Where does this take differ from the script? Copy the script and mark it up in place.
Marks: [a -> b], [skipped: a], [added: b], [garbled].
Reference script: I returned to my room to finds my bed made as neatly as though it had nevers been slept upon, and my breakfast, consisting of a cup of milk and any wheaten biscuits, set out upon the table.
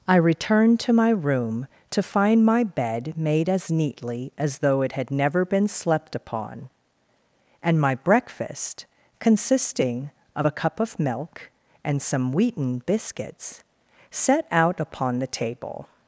I returned to my room to [finds -> find] my bed made as neatly as though it had [nevers -> never] been slept upon, and my breakfast, consisting of a cup of milk and [any -> some] wheaten biscuits, set out upon the table.